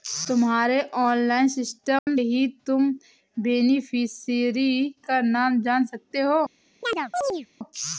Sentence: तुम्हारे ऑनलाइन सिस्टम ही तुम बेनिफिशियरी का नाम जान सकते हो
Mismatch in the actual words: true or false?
false